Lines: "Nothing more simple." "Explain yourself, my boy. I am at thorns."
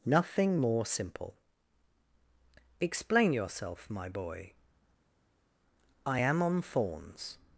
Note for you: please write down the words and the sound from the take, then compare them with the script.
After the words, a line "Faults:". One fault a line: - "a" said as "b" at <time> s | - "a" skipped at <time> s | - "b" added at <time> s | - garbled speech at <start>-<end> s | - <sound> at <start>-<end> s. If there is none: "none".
"Nothing more simple." "Explain yourself, my boy. I am on thorns."
Faults:
- "at" said as "on" at 6.4 s